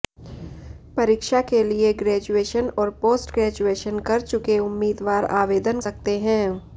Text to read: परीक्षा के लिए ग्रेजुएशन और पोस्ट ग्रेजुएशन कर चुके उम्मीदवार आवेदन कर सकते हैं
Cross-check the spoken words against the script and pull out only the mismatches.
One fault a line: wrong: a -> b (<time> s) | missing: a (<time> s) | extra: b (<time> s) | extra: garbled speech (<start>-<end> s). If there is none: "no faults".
missing: कर (5.8 s)